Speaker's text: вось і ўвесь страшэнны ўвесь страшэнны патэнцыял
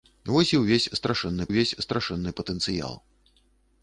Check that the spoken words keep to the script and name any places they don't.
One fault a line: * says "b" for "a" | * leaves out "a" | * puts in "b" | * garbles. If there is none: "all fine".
all fine